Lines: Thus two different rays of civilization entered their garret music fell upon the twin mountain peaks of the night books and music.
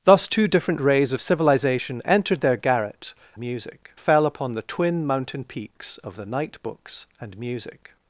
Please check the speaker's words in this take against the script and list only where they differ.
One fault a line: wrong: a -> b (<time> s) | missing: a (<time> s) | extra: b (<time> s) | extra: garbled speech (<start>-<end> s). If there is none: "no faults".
no faults